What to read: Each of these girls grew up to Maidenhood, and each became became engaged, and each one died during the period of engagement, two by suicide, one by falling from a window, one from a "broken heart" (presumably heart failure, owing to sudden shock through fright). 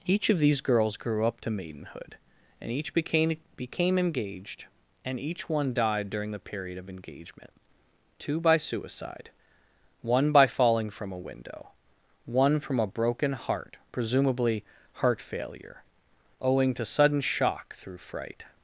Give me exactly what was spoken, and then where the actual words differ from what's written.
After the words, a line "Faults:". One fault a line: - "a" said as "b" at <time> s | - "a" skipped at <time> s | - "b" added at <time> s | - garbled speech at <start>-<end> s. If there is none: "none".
Each of these girls grew up to Maidenhood, and each became became engaged, and each one died during the period of engagement, two by suicide, one by falling from a window, one from a "broken heart" (presumably heart failure, owing to sudden shock through fright).
Faults:
none